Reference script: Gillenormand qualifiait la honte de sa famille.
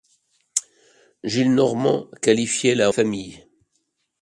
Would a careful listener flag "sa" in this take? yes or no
yes